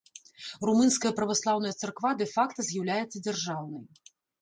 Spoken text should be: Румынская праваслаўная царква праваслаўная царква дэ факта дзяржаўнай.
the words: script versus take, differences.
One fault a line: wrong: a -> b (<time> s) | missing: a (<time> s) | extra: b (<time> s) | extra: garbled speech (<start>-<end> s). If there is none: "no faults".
missing: праваслаўная царква (2.1 s)
extra: з'яўляецца (2.7 s)